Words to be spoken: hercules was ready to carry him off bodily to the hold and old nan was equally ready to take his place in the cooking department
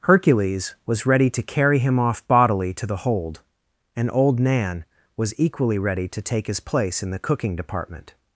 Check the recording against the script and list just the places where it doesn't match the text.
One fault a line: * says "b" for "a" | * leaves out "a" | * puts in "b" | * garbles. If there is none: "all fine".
all fine